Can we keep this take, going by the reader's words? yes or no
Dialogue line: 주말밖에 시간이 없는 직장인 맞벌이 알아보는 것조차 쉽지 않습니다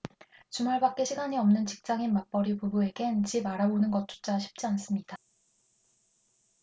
no